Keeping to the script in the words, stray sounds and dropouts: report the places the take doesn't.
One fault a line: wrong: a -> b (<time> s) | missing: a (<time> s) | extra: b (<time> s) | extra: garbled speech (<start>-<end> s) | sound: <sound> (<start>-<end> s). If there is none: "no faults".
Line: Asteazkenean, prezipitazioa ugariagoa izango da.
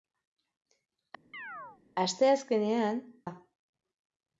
sound: chirp (1.3-1.8 s)
missing: prezipitazioa ugariagoa izango (3.0 s)